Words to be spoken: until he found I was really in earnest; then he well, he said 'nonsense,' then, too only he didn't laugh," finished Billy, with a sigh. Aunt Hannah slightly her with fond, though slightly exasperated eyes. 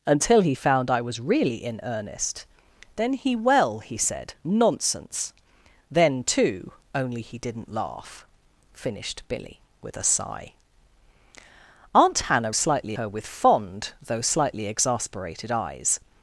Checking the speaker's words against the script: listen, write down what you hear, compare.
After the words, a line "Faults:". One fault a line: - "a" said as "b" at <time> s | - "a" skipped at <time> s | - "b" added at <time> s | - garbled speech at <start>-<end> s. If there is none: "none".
until he found I was really in earnest; then he well, he said 'nonsense,' then, too only he didn't laugh," finished Billy, with a sigh. Aunt Hannah slightly her with fond, though slightly exasperated eyes.
Faults:
none